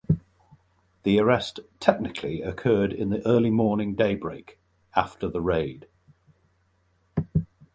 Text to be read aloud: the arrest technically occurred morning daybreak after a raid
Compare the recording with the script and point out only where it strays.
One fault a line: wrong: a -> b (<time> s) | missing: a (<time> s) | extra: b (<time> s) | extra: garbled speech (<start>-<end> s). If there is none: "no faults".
extra: in the early (2.9 s)
wrong: a -> the (5.3 s)